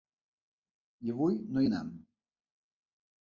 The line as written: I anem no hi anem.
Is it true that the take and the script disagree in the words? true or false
true